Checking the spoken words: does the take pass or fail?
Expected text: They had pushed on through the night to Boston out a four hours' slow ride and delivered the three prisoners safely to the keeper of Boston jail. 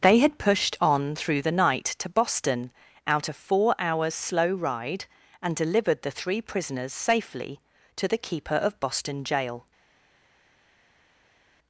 pass